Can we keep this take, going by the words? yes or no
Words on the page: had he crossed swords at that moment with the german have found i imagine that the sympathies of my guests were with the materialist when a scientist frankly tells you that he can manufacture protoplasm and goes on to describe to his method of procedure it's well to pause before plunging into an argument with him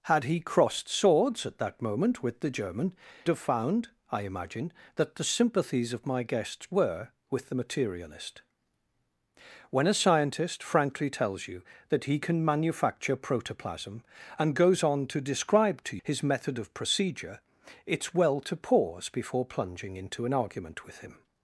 yes